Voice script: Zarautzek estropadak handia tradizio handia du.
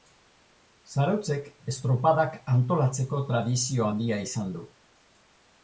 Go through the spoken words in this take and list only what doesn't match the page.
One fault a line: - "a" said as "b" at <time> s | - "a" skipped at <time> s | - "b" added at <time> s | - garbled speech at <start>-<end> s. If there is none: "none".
- "handia" said as "antolatzeko" at 2.5 s
- "izan" added at 4.3 s